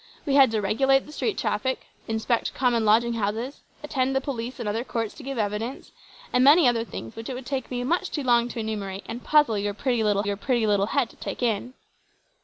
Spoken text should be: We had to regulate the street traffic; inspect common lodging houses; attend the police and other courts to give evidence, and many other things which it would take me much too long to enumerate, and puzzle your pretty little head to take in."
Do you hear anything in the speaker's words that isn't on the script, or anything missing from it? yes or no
yes